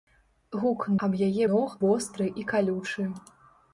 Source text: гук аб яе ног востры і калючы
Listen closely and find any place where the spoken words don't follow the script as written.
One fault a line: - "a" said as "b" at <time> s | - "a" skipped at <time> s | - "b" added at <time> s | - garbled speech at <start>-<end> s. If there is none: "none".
none